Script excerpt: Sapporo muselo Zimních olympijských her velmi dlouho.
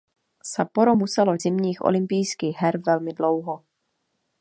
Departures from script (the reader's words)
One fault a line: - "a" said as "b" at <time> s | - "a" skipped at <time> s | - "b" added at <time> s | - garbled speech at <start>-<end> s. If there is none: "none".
none